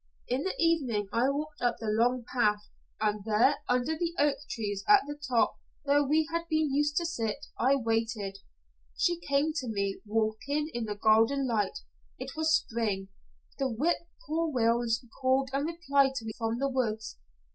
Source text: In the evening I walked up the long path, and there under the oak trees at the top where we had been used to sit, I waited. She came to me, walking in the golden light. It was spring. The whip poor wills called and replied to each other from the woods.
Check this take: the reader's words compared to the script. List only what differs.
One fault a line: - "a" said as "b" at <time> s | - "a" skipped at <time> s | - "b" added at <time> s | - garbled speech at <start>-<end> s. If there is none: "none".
- "each other" skipped at 16.3 s